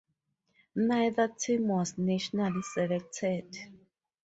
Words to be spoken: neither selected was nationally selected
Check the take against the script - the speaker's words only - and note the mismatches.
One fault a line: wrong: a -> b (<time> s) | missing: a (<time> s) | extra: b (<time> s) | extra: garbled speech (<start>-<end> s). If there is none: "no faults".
wrong: selected -> team (1.3 s)